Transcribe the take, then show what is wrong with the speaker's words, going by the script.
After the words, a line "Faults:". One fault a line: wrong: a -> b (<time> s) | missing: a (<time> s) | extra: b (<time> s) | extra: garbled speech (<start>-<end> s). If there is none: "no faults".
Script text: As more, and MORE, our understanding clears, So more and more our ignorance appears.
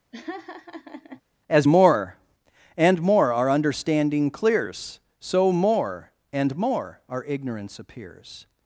As more, and MORE, our understanding clears, So more and more our ignorance appears.
Faults:
no faults